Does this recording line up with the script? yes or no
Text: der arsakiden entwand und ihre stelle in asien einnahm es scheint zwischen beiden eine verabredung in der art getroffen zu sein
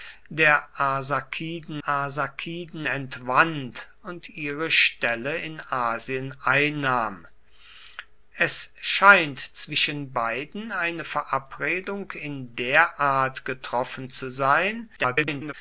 no